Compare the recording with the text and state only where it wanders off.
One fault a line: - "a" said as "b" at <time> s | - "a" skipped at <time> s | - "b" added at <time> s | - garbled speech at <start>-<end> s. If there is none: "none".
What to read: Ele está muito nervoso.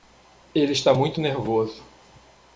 none